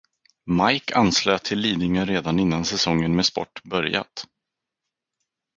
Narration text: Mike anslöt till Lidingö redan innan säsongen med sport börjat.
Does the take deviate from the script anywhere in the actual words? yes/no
no